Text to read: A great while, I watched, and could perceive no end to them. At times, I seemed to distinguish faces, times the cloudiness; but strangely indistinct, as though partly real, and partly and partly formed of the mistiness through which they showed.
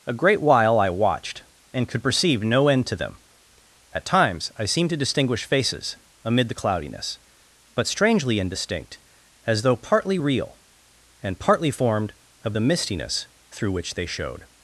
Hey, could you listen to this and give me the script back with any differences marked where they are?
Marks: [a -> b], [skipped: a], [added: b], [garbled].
A great while, I watched, and could perceive no end to them. At times, I seemed to distinguish faces, [times -> amid] the cloudiness; but strangely indistinct, as though partly real, and partly [skipped: and partly] formed of the mistiness through which they showed.